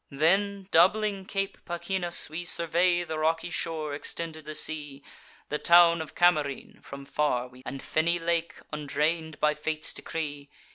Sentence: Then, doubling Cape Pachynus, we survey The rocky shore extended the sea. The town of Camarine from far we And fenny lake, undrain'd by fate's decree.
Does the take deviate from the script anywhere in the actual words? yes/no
no